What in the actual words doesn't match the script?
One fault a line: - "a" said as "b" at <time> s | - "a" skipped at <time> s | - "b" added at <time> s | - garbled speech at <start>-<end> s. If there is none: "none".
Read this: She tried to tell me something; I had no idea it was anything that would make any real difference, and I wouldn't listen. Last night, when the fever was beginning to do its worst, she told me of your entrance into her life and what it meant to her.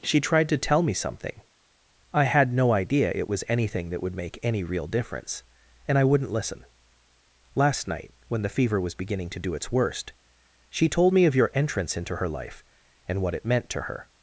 none